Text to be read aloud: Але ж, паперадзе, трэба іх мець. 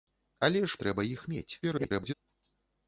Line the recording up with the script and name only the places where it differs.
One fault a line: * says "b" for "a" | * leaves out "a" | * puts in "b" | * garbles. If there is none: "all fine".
* leaves out "паперадзе"
* garbles